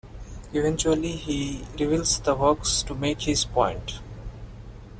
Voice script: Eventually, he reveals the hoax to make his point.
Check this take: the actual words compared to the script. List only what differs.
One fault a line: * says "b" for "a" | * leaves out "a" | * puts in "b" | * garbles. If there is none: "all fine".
all fine